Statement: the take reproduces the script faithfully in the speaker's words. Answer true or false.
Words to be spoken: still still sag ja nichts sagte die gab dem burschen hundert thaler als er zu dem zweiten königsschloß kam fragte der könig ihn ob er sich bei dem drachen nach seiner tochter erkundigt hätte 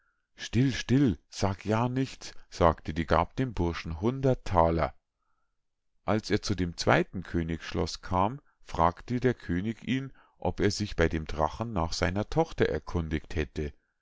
true